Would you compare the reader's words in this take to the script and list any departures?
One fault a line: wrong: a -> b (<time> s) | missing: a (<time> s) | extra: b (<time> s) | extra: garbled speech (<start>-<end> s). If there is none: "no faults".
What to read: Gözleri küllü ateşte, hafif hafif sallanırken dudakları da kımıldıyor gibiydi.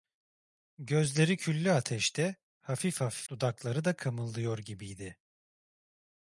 missing: sallanırken (3.3 s)